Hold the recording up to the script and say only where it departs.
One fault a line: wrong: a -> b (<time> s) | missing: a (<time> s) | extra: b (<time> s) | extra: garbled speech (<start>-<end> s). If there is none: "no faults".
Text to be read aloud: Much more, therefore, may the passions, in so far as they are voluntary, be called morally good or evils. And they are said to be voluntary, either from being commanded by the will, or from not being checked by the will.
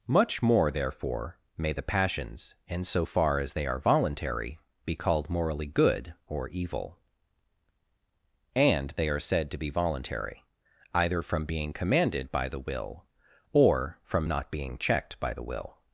wrong: evils -> evil (6.5 s)